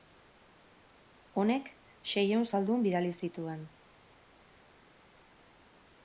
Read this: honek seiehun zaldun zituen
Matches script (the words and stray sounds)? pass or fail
fail